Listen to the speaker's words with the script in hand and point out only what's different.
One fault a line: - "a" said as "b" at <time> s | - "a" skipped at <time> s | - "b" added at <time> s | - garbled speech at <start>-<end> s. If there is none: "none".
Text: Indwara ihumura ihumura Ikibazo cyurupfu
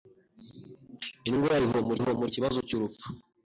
none